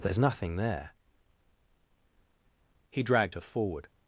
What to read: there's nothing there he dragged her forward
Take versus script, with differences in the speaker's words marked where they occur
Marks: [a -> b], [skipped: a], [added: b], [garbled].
there's nothing there he dragged her forward